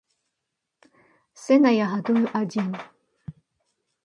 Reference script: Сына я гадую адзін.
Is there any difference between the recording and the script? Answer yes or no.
no